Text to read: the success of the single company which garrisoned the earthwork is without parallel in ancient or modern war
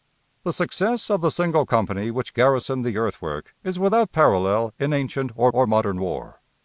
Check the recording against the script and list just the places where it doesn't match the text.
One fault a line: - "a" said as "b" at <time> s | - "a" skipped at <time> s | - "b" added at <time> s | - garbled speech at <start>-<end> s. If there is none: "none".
- "or" added at 5.5 s